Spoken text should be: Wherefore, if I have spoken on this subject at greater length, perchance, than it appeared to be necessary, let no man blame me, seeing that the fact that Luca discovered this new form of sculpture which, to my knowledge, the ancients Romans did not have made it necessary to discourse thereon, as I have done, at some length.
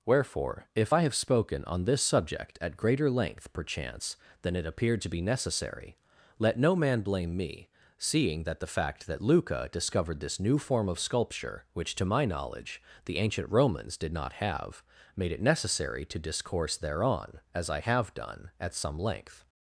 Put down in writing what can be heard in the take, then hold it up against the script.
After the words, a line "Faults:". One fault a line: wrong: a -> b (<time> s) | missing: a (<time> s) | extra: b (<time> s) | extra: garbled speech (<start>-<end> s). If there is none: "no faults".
Wherefore, if I have spoken on this subject at greater length, perchance, than it appeared to be necessary, let no man blame me, seeing that the fact that Luca discovered this new form of sculpture which, to my knowledge, the ancient Romans did not have made it necessary to discourse thereon, as I have done, at some length.
Faults:
wrong: ancients -> ancient (13.2 s)